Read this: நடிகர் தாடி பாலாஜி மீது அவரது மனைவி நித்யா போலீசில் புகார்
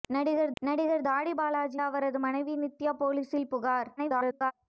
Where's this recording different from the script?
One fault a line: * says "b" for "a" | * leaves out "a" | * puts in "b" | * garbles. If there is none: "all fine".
* puts in "நடிகர்"
* leaves out "மீது"
* garbles